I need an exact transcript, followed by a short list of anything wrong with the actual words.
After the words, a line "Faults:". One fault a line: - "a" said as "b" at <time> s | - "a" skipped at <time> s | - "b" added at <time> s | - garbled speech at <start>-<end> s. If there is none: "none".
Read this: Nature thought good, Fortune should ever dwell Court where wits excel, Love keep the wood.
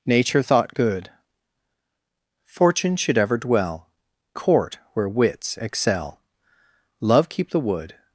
Nature thought good, Fortune should ever dwell Court where wits excel, Love keep the wood.
Faults:
none